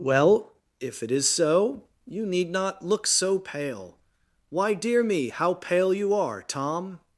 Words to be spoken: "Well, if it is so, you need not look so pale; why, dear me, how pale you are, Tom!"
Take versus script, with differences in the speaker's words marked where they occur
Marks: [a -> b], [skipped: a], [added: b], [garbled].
"Well, if it is so, you need not look so pale; why, dear me, how pale you are, Tom!"